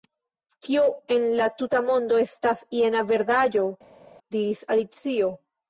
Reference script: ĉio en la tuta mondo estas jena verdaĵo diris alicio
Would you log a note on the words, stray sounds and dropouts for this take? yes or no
yes